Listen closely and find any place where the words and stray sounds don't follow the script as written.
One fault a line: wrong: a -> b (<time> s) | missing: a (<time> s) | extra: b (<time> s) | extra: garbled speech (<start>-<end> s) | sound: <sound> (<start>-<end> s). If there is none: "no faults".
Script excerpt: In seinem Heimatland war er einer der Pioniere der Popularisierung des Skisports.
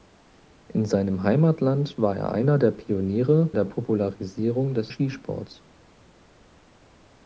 no faults